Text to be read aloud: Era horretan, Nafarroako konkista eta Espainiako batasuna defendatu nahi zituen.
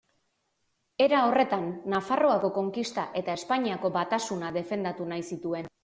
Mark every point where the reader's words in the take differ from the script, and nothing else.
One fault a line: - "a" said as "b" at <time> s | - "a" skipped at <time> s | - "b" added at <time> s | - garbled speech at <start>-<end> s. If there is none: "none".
none